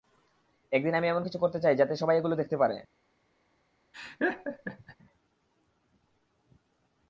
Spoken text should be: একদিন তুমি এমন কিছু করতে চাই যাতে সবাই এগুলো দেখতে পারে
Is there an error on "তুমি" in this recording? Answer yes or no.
yes